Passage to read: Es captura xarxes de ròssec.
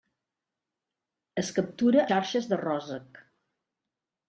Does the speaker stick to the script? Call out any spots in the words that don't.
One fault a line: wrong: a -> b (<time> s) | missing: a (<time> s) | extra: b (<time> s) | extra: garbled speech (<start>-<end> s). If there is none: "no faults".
no faults